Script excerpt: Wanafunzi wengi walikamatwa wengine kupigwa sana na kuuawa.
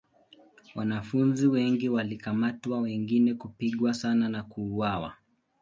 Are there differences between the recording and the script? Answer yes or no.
no